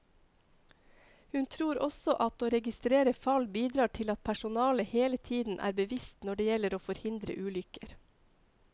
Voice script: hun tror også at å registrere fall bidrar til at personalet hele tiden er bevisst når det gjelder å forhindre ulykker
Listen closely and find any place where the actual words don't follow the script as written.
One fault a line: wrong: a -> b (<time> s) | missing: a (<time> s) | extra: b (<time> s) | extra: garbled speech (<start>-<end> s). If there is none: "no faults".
no faults